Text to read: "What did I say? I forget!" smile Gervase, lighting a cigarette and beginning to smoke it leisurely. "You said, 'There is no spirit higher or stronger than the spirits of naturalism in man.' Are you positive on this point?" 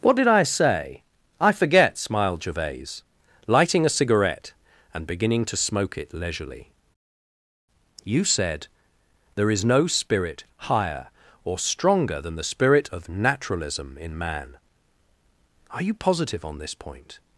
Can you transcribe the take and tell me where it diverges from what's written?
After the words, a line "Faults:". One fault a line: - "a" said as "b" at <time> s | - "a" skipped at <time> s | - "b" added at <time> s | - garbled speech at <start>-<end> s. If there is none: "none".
"What did I say? I forget!" smiled Gervase, lighting a cigarette and beginning to smoke it leisurely. "You said, 'There is no spirit higher or stronger than the spirit of naturalism in man.' Are you positive on this point?"
Faults:
- "smile" said as "smiled" at 2.0 s
- "spirits" said as "spirit" at 12.4 s